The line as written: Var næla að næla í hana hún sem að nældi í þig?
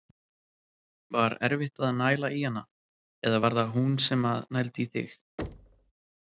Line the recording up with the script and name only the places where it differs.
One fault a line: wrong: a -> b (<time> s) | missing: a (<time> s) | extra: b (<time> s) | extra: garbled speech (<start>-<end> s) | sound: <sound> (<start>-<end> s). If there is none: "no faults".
wrong: næla -> erfitt (1.5 s)
extra: eða var það (3.3 s)
sound: thud (5.4-5.9 s)